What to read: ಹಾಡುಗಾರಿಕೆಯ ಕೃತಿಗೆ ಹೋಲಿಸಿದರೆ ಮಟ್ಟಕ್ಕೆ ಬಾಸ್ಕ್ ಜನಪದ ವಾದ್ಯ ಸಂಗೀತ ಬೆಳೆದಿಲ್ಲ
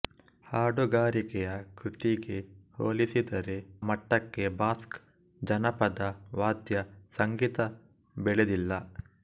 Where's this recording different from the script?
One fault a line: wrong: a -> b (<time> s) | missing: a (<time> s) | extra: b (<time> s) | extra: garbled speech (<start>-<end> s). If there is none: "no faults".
no faults